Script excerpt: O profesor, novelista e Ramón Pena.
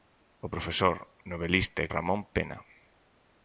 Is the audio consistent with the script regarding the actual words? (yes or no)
yes